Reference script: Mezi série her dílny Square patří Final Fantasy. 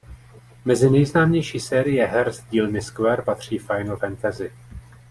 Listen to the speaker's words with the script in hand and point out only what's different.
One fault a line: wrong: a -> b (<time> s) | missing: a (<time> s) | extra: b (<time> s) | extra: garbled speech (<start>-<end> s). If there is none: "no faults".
extra: nejznámější (0.9 s)
extra: z (2.3 s)